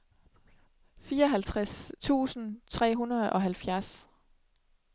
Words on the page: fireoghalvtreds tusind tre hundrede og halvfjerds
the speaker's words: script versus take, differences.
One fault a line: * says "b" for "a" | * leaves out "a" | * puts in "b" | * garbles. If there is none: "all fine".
all fine